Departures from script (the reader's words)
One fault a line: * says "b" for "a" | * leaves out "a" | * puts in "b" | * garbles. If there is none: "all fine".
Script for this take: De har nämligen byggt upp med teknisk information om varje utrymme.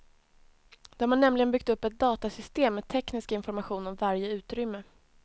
* puts in "ett datasystem"